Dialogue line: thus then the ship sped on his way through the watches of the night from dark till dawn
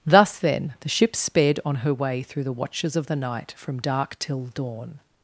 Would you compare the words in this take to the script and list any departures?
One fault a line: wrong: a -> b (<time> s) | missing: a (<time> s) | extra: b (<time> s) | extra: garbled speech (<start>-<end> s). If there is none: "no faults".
wrong: his -> her (1.8 s)